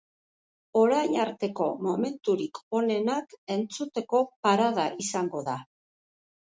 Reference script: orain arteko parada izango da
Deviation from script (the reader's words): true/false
true